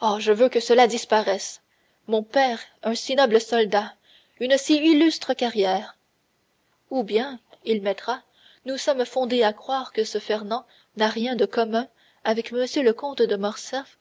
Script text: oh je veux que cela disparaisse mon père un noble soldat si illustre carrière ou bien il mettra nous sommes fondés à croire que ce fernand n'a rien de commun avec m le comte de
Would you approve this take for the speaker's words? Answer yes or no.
no